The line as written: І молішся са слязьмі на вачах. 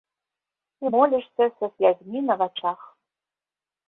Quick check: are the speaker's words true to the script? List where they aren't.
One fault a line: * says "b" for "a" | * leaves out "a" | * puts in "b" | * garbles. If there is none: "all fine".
all fine